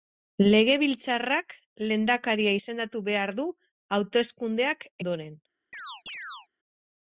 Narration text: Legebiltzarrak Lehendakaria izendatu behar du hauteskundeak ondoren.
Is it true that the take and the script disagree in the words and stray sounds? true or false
true